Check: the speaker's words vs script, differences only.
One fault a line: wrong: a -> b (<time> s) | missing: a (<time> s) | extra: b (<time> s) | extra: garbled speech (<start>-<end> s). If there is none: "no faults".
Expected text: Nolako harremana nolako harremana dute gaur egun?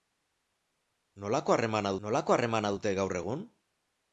no faults